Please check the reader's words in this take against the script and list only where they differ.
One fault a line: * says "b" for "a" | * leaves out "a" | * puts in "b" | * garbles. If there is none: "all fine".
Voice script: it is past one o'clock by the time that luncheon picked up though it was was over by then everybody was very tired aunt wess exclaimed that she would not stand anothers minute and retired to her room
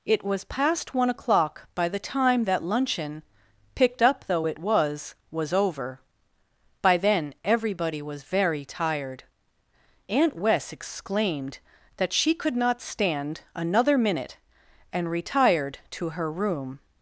* says "was" for "is"
* says "could" for "would"
* says "another" for "anothers"